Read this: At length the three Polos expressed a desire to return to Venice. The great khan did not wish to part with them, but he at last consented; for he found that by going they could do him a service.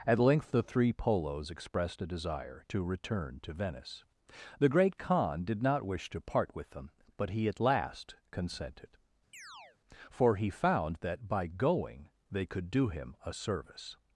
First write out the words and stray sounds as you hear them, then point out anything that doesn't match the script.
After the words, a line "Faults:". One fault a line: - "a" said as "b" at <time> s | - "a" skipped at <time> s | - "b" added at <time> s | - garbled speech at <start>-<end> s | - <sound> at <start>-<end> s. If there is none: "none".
At length the three Polos expressed a desire to return to Venice. The great khan did not wish to part with them, but he at last consented; for he found that by going they could do him a service.
Faults:
- chirp at 9.3-9.8 s